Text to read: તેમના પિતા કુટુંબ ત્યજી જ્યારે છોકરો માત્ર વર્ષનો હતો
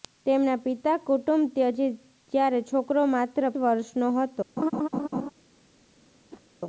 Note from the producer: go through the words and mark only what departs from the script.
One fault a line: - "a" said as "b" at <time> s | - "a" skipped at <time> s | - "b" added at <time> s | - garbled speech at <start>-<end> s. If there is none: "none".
none